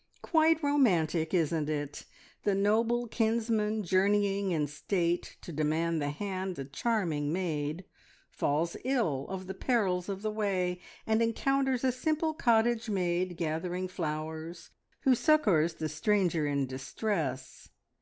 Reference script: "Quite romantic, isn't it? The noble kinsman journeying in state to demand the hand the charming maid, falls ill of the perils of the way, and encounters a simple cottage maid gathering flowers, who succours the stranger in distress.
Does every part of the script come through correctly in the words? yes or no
yes